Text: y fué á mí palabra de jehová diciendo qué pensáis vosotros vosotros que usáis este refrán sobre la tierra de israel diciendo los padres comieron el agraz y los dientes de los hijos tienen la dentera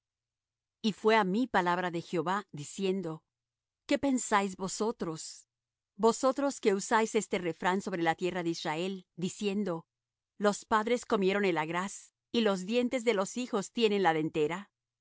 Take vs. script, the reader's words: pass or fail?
pass